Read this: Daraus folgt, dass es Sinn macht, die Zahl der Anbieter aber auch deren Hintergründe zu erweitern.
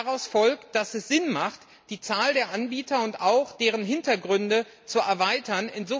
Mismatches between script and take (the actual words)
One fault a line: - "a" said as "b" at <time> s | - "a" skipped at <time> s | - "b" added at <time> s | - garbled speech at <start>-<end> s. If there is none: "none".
- "aber" said as "und" at 3.0 s